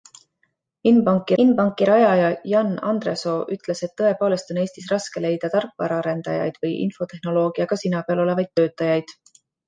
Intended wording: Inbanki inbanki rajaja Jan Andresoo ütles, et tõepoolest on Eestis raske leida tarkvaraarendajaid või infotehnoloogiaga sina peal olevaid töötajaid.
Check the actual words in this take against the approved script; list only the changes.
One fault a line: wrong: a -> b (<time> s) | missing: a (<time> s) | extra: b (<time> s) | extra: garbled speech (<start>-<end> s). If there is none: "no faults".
no faults